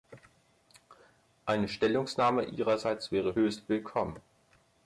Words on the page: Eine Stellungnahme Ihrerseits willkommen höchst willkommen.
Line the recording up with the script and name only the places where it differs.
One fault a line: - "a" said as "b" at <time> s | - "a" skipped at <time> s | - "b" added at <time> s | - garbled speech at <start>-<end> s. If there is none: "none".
- "willkommen" said as "wäre" at 3.1 s